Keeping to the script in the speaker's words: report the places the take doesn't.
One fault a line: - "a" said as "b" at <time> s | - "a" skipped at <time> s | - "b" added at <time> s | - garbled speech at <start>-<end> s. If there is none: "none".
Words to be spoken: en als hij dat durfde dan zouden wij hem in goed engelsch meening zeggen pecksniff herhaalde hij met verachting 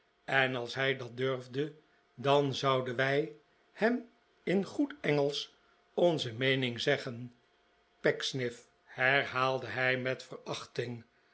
- "onze" added at 5.9 s